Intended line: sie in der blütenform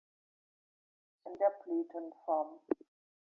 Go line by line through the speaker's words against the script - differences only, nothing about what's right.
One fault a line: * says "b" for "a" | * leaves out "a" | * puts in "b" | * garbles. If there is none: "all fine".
all fine